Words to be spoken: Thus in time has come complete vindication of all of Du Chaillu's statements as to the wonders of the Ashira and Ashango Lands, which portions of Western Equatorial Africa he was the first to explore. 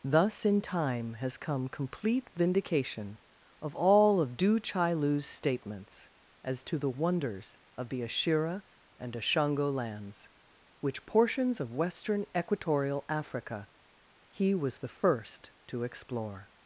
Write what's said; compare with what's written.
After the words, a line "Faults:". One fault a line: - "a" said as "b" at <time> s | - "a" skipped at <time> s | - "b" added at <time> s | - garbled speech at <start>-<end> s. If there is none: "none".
Thus in time has come complete vindication of all of Du Chaillu's statements as to the wonders of the Ashira and Ashango Lands, which portions of Western Equatorial Africa he was the first to explore.
Faults:
none